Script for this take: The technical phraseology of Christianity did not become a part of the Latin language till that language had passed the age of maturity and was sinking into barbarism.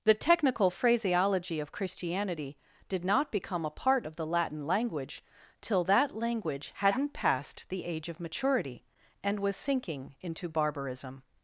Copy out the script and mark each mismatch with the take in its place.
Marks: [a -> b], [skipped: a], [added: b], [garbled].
The technical phraseology of Christianity did not become a part of the Latin language till that language [had -> hadn't] passed the age of maturity and was sinking into barbarism.